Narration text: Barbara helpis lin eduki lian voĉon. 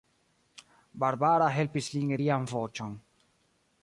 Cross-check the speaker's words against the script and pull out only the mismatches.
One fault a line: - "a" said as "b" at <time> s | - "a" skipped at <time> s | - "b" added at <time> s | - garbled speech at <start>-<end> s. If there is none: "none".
- "eduki" skipped at 2.1 s